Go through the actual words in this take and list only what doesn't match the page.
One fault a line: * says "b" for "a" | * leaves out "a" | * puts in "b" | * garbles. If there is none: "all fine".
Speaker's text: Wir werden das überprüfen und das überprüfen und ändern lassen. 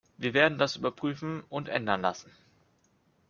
* leaves out "das überprüfen und"